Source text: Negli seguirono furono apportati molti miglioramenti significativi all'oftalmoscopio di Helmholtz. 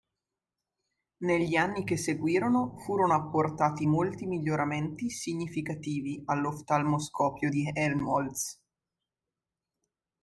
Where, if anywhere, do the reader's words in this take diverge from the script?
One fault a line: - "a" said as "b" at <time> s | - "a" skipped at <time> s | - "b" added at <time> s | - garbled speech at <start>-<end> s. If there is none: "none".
- "anni che" added at 1.6 s